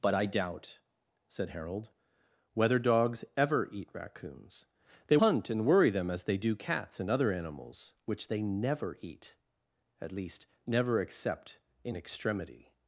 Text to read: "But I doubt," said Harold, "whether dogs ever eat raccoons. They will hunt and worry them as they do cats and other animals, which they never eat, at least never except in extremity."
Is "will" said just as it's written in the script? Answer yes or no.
no